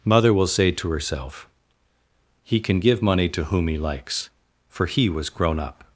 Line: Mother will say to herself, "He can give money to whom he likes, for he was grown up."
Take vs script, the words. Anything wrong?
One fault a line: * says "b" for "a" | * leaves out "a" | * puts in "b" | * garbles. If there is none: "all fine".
all fine